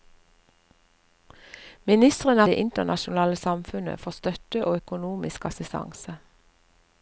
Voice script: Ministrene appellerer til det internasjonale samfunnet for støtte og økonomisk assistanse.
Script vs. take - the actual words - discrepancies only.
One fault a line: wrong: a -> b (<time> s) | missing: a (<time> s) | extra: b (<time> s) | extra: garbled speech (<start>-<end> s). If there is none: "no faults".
missing: appellerer til (2.4 s)